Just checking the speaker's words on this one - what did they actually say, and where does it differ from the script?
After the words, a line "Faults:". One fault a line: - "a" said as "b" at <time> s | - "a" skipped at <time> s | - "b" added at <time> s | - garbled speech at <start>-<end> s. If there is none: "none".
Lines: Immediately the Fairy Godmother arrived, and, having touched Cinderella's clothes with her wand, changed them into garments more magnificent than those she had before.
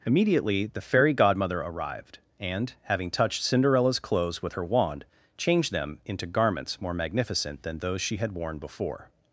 Immediately the Fairy Godmother arrived, and, having touched Cinderella's clothes with her wand, changed them into garments more magnificent than those she had worn before.
Faults:
- "worn" added at 8.3 s